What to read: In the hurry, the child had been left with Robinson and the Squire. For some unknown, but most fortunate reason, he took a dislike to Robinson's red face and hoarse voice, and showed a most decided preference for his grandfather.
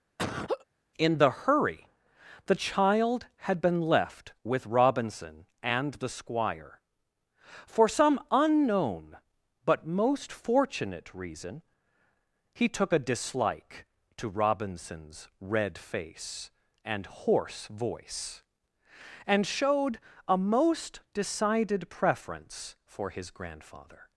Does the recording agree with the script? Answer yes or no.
yes